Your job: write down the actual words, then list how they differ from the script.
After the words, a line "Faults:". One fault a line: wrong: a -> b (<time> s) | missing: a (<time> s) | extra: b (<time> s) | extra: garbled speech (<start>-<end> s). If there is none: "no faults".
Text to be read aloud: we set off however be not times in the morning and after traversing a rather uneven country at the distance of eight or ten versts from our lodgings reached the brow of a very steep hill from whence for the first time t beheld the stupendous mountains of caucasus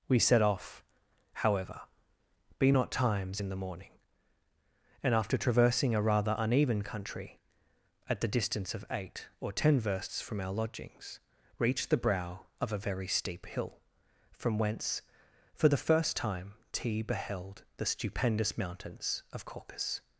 we set off however be not times in the morning and after traversing a rather uneven country at the distance of eight or ten versts from our lodgings reached the brow of a very steep hill from whence for the first time t beheld the stupendous mountains of caucasus
Faults:
no faults